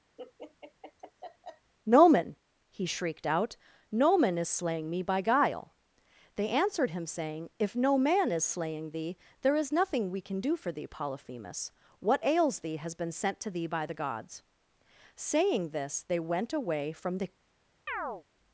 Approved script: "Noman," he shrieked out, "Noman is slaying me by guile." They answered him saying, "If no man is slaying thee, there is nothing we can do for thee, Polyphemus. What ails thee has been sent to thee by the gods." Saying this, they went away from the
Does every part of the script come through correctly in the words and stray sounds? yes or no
no